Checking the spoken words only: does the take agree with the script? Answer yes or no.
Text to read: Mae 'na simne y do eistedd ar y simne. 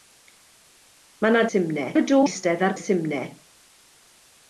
yes